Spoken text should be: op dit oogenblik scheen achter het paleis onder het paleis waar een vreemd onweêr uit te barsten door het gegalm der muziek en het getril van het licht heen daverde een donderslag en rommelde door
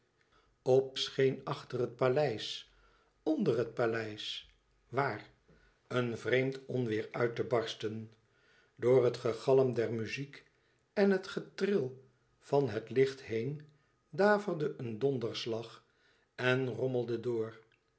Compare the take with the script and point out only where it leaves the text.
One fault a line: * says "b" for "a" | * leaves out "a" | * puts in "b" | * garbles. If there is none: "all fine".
* leaves out "dit oogenblik"